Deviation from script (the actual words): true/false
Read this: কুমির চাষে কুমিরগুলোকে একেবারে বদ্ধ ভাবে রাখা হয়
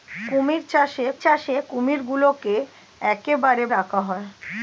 true